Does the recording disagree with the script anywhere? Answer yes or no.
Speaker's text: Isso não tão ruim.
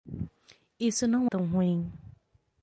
no